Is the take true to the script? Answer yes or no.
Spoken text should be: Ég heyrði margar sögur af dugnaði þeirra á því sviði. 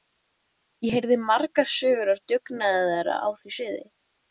yes